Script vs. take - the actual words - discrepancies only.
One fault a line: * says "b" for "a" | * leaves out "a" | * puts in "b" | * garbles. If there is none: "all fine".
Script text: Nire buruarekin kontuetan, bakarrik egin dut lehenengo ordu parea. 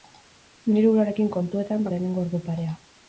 * leaves out "bakarrik egin dut"